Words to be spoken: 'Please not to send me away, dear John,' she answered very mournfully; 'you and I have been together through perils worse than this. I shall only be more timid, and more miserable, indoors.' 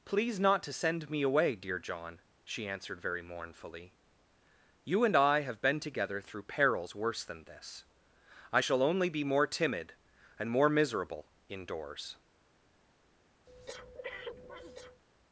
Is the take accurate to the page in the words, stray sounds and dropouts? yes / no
no